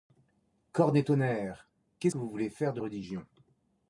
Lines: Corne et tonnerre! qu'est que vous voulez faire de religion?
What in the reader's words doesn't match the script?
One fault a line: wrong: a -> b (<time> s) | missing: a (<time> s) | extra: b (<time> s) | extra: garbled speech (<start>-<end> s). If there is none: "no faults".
no faults